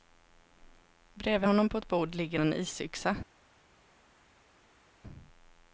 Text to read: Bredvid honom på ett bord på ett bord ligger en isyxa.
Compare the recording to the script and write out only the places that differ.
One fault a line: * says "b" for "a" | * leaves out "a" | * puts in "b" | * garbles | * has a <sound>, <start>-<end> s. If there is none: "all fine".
* leaves out "på ett bord"